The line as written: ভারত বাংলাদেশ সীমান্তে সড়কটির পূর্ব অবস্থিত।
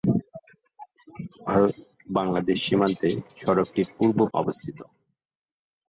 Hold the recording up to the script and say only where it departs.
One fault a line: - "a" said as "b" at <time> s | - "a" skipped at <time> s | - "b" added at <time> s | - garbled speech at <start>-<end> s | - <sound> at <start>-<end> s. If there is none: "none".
none